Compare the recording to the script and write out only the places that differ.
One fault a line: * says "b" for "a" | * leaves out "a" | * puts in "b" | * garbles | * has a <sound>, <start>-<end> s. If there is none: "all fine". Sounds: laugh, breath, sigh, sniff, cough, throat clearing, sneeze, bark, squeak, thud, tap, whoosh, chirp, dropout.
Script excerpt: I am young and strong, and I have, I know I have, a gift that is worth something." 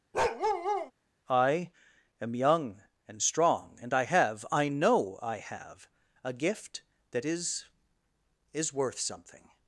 * has a bark, 0.1-0.9 s
* puts in "is"